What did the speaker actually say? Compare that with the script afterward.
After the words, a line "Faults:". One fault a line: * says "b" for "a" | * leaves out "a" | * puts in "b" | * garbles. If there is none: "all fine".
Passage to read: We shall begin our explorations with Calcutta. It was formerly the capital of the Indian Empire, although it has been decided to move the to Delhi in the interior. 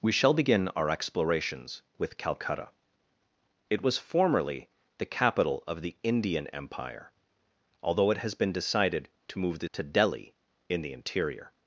We shall begin our explorations with Calcutta. It was formerly the capital of the Indian Empire, although it has been decided to move the to Delhi in the interior.
Faults:
all fine